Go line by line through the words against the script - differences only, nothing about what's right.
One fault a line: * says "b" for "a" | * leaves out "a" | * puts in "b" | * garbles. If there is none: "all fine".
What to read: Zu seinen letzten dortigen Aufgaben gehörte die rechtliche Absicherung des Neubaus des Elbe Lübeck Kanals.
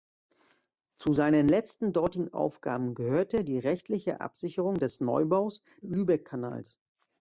* leaves out "des Elbe"